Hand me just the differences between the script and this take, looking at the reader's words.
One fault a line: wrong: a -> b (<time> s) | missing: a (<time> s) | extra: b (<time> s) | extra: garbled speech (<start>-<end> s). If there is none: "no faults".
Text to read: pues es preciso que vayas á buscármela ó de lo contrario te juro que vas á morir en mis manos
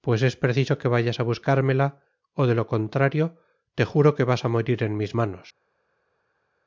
no faults